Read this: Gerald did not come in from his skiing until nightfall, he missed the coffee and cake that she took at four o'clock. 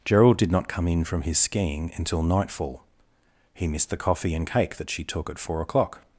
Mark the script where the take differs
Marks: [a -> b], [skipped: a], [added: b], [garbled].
Gerald did not come in from his skiing until nightfall, he missed the coffee and cake that she took at four o'clock.